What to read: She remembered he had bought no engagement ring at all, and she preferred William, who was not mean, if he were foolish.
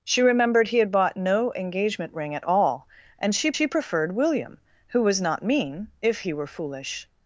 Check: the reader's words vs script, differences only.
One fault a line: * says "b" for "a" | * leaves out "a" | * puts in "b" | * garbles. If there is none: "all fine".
* puts in "she"